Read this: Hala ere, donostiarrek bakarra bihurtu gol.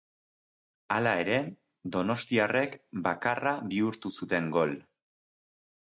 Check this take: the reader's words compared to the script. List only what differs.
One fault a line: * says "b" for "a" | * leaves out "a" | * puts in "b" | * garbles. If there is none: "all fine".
* puts in "zuten"